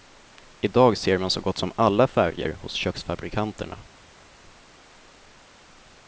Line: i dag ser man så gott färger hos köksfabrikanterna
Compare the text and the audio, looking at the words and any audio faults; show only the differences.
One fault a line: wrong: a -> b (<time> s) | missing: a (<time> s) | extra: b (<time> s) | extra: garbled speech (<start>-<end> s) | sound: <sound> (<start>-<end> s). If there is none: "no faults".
extra: som alla (1.6 s)